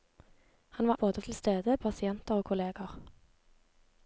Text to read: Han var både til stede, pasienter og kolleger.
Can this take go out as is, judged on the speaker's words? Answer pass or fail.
pass